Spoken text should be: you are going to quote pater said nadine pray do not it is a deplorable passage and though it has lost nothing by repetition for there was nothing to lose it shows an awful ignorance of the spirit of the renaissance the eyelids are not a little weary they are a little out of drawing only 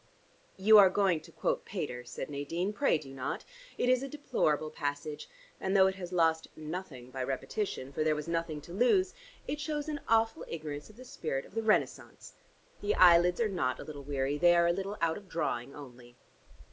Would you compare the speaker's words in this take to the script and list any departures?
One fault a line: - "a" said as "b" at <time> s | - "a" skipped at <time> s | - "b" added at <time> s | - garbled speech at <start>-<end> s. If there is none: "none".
none